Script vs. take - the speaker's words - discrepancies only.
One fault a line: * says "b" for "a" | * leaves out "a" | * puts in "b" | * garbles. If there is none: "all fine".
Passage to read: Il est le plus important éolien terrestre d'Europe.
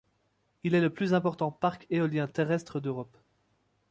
* puts in "parc"